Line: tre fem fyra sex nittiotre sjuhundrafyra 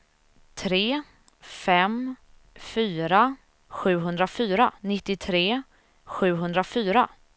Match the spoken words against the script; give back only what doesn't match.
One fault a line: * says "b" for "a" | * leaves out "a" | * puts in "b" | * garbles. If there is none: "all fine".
* says "sjuhundrafyra" for "sex"